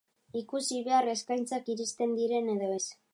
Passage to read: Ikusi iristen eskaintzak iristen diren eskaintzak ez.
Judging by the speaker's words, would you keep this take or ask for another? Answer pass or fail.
fail